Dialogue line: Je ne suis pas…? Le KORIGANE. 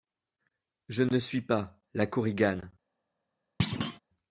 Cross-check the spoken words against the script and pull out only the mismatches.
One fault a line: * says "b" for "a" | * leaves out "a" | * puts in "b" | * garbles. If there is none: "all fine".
* says "LA" for "Le"